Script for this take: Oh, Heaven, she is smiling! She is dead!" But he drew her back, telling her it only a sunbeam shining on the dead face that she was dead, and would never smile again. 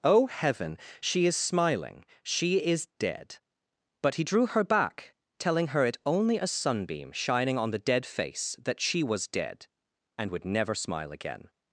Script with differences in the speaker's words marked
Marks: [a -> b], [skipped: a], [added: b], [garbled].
Oh, Heaven, she is smiling! She is dead!" But he drew her back, telling her it only a sunbeam shining on the dead face that she was dead, and would never smile again.